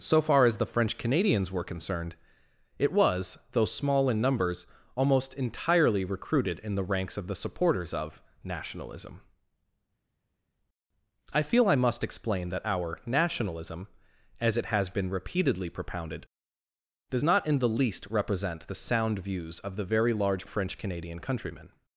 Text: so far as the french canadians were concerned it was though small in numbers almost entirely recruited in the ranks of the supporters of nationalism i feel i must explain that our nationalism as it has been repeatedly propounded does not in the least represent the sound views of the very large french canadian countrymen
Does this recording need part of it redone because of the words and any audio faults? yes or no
no